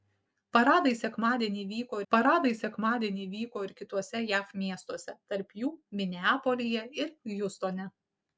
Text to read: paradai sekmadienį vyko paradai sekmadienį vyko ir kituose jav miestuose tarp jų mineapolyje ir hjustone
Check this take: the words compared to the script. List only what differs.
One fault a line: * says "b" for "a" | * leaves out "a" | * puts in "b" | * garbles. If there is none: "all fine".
all fine